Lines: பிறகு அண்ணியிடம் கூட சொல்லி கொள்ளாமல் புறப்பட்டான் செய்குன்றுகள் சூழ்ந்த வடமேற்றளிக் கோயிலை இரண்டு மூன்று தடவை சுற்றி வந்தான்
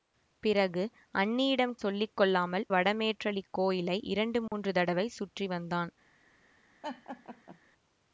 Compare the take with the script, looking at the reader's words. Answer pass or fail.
fail